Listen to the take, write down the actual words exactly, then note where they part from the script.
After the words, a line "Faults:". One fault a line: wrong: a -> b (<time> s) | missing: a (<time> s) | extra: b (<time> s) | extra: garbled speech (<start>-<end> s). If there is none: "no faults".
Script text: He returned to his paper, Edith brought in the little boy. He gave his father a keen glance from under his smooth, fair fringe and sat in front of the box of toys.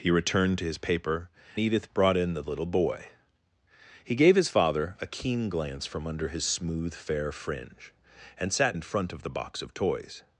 He returned to his paper, Edith brought in the little boy. He gave his father a keen glance from under his smooth, fair fringe and sat in front of the box of toys.
Faults:
no faults